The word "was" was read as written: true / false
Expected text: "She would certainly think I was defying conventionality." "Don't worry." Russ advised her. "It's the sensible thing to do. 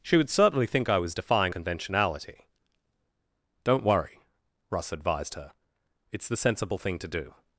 true